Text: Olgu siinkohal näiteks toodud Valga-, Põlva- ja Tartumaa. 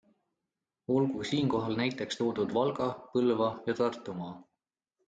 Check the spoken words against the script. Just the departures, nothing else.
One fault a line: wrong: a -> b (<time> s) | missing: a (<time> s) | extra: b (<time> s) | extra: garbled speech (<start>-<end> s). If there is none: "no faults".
no faults